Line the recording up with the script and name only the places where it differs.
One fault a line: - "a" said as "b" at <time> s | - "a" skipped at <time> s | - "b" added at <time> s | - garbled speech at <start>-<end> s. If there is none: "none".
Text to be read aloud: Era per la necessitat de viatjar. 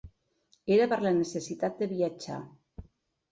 none